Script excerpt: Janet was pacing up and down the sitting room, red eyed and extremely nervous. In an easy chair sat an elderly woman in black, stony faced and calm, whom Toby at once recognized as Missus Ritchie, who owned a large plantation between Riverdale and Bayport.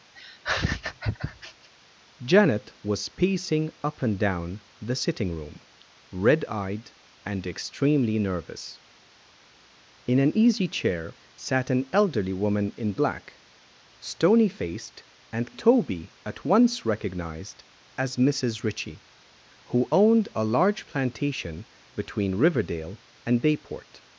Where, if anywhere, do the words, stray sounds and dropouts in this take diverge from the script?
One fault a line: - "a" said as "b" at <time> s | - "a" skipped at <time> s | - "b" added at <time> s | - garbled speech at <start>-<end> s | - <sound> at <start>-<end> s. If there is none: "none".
- laugh at 0.2-1.7 s
- "calm whom" skipped at 15.5 s